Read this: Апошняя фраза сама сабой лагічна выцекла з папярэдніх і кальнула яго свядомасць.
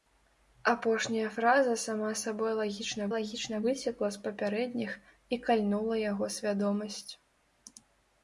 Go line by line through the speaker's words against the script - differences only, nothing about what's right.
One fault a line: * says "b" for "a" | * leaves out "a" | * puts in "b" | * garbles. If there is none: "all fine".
* puts in "лагічна"